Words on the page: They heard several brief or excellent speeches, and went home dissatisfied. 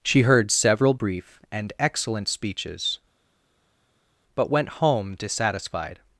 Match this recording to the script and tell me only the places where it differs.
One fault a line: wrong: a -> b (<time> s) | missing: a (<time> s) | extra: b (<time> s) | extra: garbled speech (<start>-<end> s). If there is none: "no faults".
wrong: They -> She (0.0 s)
wrong: or -> and (1.5 s)
wrong: and -> but (4.3 s)